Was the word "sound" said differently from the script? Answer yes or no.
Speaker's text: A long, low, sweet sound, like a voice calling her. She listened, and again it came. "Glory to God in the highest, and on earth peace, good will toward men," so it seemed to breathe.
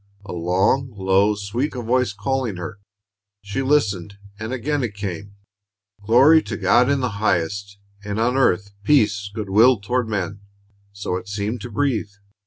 yes